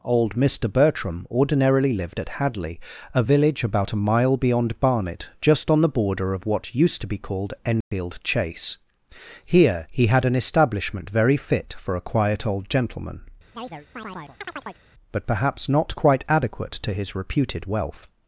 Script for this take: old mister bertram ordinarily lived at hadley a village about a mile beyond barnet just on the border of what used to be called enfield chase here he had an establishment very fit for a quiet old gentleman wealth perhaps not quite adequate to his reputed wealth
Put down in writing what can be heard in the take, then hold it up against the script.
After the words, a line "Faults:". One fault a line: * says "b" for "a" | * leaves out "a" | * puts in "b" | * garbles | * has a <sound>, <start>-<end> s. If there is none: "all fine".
old mister bertram ordinarily lived at hadley a village about a mile beyond barnet just on the border of what used to be called enfield chase here he had an establishment very fit for a quiet old gentleman but perhaps not quite adequate to his reputed wealth
Faults:
* has a dropout, 7.8-7.9 s
* has a chirp, 13.5-14.8 s
* says "but" for "wealth"